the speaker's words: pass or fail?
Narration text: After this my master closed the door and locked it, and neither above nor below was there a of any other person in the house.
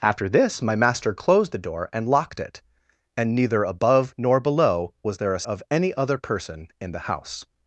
pass